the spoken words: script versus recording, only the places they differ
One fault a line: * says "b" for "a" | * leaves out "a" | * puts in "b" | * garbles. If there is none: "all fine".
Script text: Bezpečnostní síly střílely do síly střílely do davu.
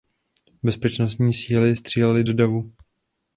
* leaves out "síly střílely do"